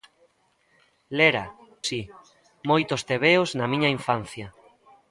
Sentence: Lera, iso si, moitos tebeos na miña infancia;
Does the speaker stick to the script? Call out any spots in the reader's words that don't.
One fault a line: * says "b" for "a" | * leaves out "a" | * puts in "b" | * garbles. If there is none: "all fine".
* leaves out "iso"